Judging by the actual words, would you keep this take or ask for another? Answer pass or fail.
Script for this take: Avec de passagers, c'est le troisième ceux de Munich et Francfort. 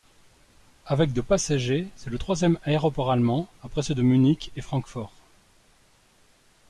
fail